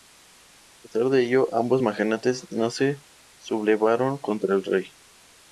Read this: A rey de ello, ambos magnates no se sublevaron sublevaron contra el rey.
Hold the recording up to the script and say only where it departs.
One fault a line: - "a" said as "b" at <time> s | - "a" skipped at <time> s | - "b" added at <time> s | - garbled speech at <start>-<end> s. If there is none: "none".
- "rey" said as "pesar" at 0.8 s
- "sublevaron" skipped at 4.2 s